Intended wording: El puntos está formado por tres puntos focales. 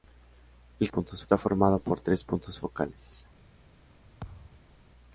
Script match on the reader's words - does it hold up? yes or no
yes